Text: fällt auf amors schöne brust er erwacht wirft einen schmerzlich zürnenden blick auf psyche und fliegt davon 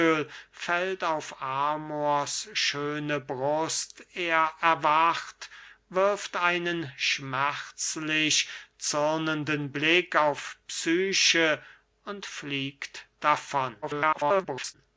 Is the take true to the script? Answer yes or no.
no